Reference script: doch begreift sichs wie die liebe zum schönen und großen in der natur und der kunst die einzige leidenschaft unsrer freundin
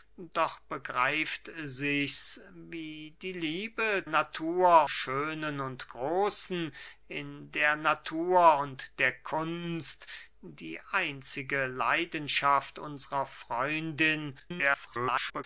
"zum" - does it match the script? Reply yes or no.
no